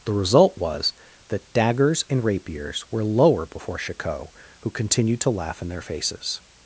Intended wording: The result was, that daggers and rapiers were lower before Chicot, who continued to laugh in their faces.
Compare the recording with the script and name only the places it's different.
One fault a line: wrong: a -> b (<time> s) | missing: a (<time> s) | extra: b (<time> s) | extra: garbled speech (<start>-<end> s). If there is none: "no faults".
no faults